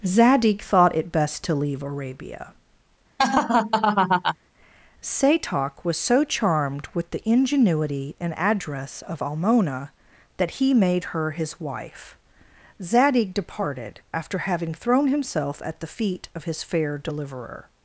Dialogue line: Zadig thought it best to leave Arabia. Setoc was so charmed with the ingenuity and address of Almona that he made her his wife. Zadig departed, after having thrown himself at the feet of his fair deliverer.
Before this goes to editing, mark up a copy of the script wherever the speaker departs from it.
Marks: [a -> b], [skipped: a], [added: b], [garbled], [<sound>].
Zadig thought it best to leave Arabia. [laugh] Setoc was so charmed with the ingenuity and address of Almona that he made her his wife. Zadig departed, after having thrown himself at the feet of his fair deliverer.